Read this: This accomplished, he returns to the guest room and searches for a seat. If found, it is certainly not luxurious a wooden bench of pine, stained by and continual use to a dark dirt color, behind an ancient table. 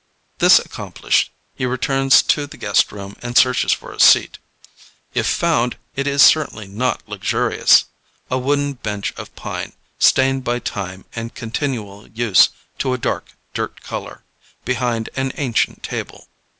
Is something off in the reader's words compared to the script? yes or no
yes